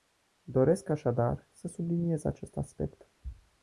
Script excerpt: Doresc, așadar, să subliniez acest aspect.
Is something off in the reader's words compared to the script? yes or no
no